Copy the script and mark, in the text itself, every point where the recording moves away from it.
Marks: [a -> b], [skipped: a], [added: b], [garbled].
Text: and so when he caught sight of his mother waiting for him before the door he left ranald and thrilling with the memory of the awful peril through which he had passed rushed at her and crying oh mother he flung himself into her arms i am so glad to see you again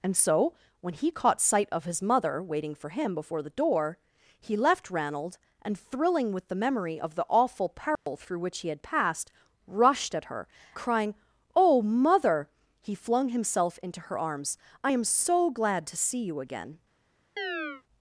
and so when he caught sight of his mother waiting for him before the door he left ranald and thrilling with the memory of the awful peril through which he had passed rushed at her [skipped: and] crying oh mother he flung himself into her arms i am so glad to see you again